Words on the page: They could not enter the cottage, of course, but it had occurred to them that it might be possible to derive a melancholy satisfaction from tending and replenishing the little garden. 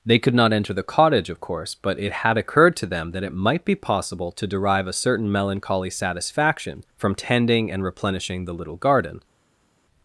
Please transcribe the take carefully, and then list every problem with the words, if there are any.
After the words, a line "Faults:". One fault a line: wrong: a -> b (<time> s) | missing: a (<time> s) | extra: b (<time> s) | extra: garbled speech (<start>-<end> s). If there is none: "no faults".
They could not enter the cottage, of course, but it had occurred to them that it might be possible to derive a certain melancholy satisfaction from tending and replenishing the little garden.
Faults:
extra: certain (4.9 s)